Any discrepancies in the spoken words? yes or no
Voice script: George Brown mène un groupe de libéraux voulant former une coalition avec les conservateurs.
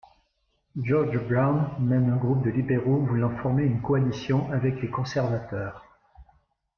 no